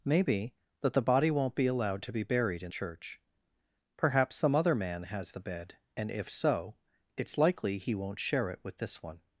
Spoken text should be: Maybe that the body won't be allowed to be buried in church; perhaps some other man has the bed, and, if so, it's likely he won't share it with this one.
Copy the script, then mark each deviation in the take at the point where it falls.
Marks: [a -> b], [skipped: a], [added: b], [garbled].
Maybe that the body won't be allowed to be buried in church; perhaps some other man has the bed, and, if so, it's likely he won't share it with this one.